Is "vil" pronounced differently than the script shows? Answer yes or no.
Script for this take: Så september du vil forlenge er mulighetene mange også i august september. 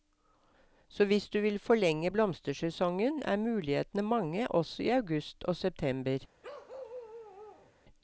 no